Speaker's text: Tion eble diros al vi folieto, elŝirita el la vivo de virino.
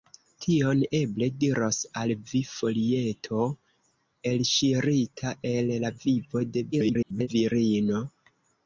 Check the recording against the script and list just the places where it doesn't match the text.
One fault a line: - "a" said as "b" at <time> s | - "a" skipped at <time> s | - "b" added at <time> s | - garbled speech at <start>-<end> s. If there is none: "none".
- garbled speech at 6.7-7.3 s